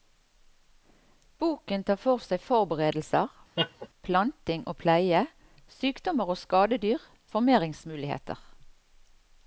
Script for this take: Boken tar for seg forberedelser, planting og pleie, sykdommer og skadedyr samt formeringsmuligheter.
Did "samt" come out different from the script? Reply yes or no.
yes